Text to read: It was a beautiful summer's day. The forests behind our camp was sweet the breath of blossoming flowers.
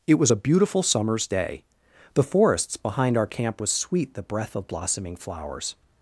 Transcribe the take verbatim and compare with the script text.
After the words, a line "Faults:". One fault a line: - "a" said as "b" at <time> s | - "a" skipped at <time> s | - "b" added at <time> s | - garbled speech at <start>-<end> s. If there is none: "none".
It was a beautiful summer's day. The forests behind our camp was sweet the breath of blossoming flowers.
Faults:
none